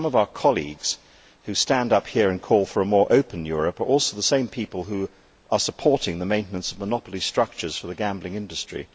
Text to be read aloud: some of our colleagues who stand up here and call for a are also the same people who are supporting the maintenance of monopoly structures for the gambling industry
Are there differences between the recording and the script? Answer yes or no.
yes